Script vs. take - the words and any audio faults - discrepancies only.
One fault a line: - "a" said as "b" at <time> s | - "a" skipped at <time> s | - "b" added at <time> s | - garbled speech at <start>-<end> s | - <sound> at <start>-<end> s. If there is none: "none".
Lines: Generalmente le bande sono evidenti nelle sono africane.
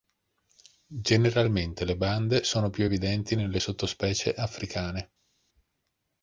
- "più" added at 2.7 s
- "sono" said as "sottospecie" at 3.6 s